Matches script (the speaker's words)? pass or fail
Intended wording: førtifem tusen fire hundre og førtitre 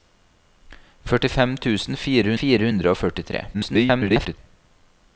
fail